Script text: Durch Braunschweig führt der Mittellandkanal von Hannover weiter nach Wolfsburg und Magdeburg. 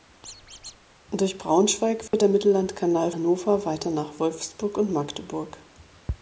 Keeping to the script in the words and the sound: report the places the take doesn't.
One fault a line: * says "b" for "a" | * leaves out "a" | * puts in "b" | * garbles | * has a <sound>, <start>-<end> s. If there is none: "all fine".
* has a squeak, 0.2-0.8 s
* has a dropout, 2.1-2.1 s
* leaves out "von"